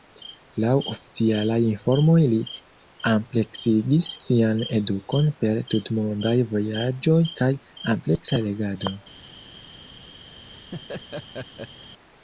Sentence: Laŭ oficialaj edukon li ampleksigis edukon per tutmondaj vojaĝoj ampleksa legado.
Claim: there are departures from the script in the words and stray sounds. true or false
true